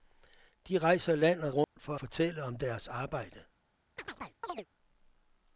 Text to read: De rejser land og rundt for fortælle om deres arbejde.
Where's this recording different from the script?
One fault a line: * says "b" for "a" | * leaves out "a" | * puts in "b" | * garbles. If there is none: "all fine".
all fine